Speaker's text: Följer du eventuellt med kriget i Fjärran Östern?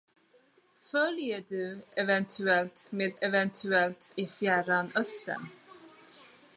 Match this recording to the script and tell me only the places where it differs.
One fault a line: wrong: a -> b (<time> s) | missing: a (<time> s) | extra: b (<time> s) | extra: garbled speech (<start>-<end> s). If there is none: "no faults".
wrong: kriget -> eventuellt (3.2 s)